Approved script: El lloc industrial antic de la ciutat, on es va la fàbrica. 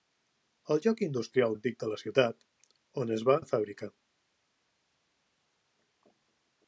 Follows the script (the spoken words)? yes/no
yes